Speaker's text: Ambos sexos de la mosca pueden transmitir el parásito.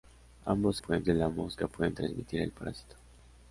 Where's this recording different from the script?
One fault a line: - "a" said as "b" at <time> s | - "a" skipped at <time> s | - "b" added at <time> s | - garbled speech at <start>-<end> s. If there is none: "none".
- "sexos" said as "pueden" at 0.8 s